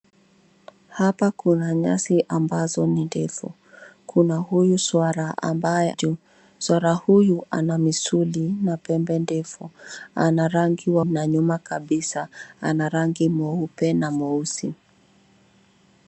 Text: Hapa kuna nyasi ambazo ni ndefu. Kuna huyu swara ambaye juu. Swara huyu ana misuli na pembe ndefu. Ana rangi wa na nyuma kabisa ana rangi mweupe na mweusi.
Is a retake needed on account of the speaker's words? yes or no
no